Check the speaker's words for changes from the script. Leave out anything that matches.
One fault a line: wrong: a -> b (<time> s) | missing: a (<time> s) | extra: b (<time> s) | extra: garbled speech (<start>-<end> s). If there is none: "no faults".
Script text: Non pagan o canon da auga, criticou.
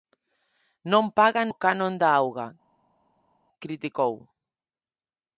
no faults